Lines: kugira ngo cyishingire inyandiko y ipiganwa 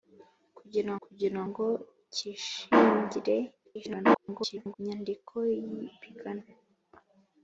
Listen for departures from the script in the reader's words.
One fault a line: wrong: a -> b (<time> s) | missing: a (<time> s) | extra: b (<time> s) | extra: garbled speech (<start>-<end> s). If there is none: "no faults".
extra: kugira (1.0 s)
extra: garbled speech (3.6-4.8 s)